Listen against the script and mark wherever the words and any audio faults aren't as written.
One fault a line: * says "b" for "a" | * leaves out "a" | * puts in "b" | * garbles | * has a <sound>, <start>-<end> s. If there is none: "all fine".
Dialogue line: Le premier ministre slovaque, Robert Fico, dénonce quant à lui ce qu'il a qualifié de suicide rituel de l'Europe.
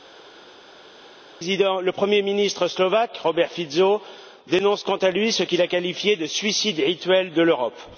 all fine